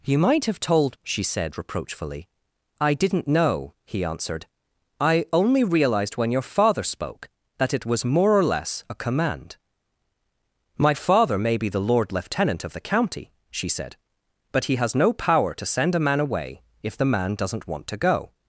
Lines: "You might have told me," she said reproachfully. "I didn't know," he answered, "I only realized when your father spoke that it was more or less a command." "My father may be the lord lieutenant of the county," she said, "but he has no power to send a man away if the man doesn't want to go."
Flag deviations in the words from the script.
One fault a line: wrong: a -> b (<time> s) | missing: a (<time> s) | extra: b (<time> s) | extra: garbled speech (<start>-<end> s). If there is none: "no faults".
missing: me (1.0 s)